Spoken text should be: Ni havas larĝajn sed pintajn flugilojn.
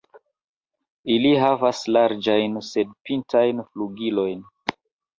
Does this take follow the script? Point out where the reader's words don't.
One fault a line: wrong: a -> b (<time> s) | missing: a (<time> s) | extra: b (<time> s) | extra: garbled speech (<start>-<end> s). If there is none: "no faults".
wrong: Ni -> Ili (1.2 s)